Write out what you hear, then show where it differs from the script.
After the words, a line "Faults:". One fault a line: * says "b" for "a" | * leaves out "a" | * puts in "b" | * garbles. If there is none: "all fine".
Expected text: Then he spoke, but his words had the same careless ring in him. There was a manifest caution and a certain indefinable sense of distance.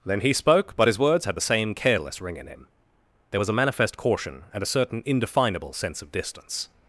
Then he spoke, but his words had the same careless ring in him. There was a manifest caution and a certain indefinable sense of distance.
Faults:
all fine